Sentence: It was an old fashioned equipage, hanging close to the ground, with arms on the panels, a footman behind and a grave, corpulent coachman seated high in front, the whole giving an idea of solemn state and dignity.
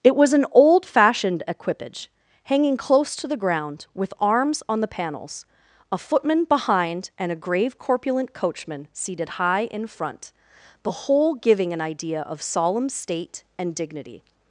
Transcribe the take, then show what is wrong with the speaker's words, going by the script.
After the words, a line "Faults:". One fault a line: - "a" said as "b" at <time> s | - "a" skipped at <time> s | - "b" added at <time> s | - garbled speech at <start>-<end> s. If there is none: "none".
It was an old fashioned equipage, hanging close to the ground, with arms on the panels, a footman behind and a grave, corpulent coachman seated high in front, the whole giving an idea of solemn state and dignity.
Faults:
none